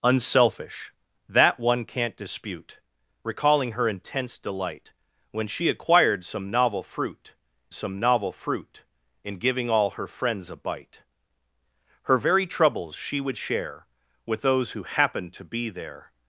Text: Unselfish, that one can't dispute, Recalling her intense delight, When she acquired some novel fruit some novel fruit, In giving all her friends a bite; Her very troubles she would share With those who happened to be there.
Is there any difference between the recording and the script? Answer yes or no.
no